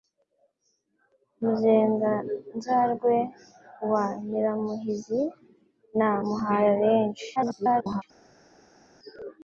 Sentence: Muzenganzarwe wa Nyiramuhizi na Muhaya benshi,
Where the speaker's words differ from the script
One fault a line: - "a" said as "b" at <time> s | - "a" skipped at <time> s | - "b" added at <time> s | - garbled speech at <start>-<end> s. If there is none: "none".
- garbled speech at 7.4-8.0 s